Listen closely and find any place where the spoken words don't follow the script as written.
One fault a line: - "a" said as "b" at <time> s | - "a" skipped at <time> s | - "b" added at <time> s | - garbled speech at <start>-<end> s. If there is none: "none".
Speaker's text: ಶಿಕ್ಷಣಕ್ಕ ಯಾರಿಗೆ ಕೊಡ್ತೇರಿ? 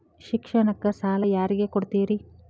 - "ಸಾಲ" added at 0.9 s